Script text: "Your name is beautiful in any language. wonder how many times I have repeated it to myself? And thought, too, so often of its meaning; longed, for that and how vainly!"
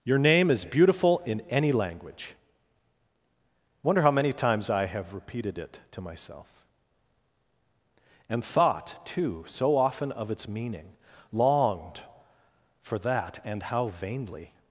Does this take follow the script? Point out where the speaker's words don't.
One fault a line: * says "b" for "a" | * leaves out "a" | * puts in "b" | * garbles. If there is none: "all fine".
all fine